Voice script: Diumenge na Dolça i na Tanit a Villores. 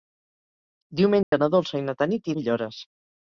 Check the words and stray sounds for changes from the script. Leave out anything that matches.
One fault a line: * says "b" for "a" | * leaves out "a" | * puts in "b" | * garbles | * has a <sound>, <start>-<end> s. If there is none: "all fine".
* has a dropout, 1.2-1.3 s